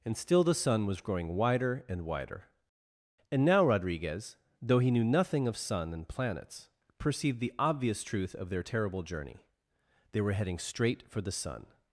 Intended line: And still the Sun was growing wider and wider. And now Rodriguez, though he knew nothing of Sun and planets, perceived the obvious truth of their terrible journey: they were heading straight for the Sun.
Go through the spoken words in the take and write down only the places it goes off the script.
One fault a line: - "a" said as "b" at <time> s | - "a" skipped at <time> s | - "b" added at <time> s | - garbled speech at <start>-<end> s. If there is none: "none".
none